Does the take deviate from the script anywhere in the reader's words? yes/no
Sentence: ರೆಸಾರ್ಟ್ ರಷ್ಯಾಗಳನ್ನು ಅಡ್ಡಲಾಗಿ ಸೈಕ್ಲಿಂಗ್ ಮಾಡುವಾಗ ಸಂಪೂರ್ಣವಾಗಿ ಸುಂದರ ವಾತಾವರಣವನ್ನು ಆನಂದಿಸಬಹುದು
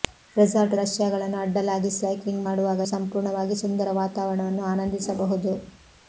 no